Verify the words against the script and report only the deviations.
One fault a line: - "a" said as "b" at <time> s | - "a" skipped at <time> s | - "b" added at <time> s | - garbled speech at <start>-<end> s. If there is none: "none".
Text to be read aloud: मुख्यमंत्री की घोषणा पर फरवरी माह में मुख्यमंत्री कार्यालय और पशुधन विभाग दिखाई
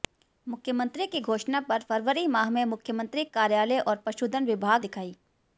none